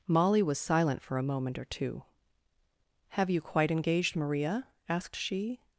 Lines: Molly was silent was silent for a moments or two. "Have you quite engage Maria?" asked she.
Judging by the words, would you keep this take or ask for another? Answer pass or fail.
fail